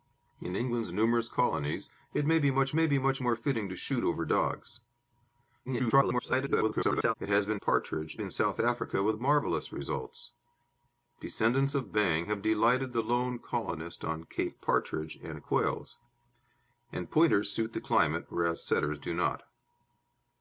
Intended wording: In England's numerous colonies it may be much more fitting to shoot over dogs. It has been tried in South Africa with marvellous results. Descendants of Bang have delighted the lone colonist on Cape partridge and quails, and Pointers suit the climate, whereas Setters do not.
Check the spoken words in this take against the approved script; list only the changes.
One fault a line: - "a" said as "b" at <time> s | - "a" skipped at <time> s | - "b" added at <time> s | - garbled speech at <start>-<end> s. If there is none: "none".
- "may be much" added at 2.7 s
- garbled speech at 5.7-7.1 s
- "tried" said as "partridge" at 7.6 s